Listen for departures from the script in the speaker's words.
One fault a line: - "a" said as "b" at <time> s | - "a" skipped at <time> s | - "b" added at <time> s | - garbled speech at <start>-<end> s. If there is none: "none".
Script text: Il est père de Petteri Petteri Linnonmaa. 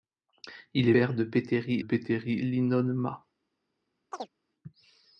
none